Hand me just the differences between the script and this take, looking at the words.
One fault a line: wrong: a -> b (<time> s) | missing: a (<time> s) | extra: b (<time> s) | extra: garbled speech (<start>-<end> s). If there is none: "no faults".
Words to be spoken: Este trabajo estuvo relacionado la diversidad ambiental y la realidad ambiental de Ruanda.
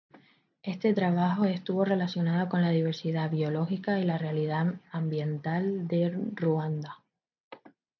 extra: con (2.5 s)
wrong: ambiental -> biológica (3.3 s)